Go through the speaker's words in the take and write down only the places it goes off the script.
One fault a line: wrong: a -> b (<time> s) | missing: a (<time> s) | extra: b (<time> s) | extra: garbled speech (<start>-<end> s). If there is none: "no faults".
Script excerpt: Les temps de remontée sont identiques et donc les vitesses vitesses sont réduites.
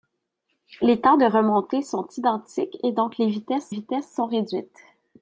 no faults